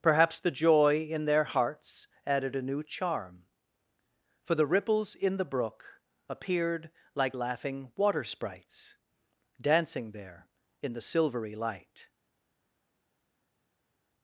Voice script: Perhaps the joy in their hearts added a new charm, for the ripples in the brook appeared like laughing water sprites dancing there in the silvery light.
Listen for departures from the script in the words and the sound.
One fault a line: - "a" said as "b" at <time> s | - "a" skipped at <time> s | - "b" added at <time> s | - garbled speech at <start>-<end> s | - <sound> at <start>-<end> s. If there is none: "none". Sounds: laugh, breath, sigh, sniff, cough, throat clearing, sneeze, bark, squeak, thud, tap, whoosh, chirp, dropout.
none